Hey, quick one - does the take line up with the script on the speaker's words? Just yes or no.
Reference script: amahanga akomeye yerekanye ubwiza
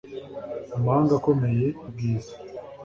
no